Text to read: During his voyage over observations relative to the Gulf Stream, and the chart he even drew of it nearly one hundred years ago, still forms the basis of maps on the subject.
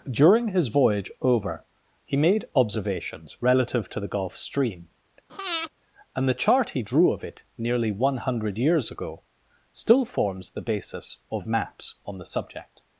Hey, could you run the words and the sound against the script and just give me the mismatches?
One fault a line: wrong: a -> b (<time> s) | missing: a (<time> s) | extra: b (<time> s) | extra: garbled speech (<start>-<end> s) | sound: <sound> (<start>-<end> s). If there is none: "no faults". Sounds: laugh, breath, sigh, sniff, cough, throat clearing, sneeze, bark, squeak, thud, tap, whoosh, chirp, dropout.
extra: he made (2.0 s)
sound: breath (5.3-5.7 s)
missing: even (6.8 s)